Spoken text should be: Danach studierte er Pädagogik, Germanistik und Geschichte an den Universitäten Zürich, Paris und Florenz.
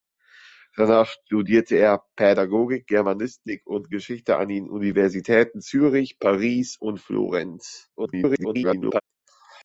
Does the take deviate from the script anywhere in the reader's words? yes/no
yes